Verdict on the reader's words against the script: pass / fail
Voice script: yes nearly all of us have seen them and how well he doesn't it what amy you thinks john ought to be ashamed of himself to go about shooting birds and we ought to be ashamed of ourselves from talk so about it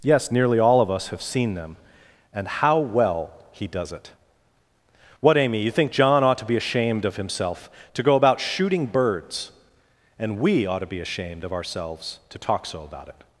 fail